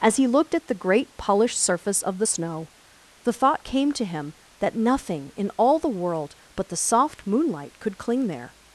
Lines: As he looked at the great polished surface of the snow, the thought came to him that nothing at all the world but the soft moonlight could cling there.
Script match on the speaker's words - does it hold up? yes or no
no